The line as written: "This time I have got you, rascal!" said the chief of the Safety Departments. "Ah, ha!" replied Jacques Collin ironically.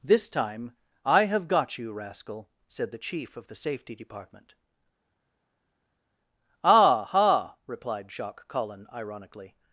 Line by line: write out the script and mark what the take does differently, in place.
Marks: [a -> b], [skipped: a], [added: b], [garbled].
"This time I have got you, rascal!" said the chief of the Safety [Departments. -> Department] "Ah, ha!" replied Jacques Collin ironically.